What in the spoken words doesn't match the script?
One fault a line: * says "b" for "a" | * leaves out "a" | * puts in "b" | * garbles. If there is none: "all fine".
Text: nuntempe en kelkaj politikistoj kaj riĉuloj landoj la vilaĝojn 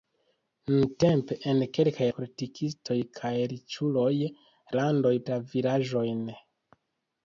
all fine